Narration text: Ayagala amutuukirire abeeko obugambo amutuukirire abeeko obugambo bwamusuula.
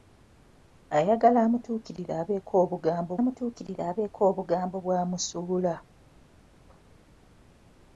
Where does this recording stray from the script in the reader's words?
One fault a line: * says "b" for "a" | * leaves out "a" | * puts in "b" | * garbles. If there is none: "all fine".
all fine